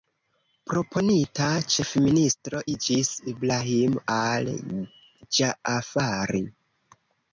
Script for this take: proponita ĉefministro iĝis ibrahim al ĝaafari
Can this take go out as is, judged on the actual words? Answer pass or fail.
pass